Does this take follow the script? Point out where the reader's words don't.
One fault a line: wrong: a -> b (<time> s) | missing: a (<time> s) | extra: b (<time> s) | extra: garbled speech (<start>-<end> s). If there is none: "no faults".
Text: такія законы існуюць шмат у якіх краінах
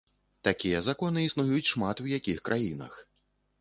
no faults